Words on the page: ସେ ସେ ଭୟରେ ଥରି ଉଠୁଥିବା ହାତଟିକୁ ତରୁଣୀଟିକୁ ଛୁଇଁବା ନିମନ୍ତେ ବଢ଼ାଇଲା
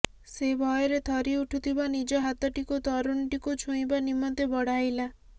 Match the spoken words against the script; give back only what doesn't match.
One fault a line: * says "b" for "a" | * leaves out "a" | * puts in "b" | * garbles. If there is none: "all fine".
* leaves out "ସେ"
* puts in "ନିଜ"